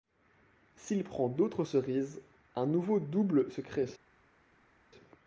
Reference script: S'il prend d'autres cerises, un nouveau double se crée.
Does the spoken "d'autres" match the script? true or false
true